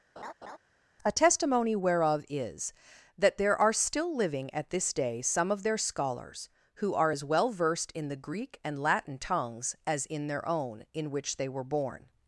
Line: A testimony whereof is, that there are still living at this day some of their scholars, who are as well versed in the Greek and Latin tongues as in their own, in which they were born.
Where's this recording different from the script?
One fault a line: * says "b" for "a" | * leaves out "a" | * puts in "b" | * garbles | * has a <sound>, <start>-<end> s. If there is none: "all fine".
* has a laugh, 0.2-0.6 s